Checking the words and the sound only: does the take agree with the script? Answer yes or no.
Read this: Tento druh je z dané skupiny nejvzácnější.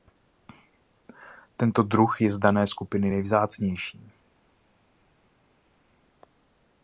yes